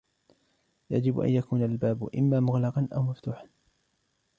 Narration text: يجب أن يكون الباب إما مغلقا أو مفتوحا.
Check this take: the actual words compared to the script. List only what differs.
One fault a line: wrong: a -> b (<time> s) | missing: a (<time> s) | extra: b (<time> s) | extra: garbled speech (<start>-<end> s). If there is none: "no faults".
no faults